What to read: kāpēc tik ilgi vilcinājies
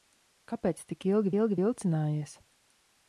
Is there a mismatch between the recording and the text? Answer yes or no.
yes